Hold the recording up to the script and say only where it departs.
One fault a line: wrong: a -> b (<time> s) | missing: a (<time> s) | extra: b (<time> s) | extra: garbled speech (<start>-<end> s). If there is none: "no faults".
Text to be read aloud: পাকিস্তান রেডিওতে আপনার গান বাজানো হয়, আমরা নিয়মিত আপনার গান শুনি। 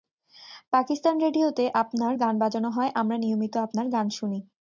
no faults